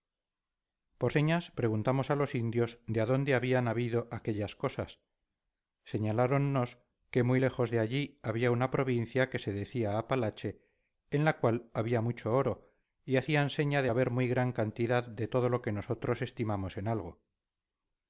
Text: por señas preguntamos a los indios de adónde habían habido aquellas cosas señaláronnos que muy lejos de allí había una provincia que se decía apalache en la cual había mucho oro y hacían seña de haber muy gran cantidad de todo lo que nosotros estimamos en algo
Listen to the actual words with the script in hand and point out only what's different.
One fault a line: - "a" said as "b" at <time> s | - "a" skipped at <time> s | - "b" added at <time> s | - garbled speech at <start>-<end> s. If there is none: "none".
none